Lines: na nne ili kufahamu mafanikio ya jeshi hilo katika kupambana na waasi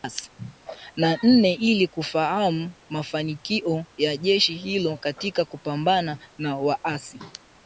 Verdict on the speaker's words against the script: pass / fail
pass